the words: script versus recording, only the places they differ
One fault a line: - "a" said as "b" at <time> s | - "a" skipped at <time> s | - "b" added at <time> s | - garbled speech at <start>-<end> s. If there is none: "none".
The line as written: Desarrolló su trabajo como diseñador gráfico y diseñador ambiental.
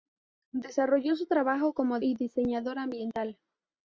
- "diseñador gráfico" skipped at 2.0 s